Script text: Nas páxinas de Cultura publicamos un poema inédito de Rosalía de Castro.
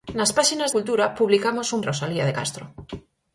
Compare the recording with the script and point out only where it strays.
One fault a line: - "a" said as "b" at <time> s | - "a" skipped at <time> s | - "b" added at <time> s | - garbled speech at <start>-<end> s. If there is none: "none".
- "de" skipped at 0.7 s
- "poema inédito de" skipped at 1.8 s